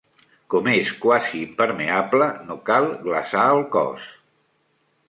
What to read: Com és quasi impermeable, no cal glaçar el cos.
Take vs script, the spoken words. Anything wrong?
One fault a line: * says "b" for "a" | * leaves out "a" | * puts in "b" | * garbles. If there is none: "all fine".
all fine